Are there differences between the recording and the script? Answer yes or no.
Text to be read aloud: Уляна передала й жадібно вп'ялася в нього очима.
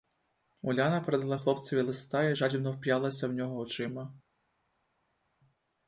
yes